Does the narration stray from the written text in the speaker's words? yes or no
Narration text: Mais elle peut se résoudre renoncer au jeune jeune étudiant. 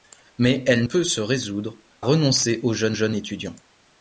no